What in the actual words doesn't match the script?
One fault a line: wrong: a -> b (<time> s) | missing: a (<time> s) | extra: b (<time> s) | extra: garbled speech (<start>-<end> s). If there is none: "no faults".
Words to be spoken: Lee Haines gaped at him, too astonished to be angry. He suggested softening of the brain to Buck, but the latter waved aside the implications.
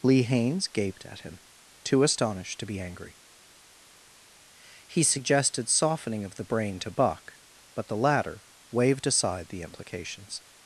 no faults